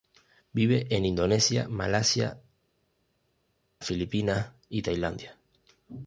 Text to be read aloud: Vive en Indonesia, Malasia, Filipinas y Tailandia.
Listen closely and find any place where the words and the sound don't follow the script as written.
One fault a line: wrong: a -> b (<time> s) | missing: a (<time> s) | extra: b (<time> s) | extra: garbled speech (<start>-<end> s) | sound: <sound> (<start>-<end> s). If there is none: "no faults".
no faults